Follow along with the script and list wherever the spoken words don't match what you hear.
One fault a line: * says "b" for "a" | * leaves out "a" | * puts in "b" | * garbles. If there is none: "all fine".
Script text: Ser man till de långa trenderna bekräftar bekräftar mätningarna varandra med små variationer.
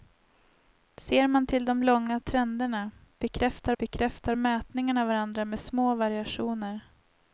all fine